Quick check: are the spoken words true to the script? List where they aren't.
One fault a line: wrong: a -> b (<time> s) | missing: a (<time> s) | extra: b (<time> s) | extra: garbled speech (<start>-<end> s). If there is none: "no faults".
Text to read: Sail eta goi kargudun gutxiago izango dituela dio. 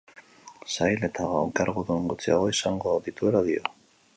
missing: goi (1.3 s)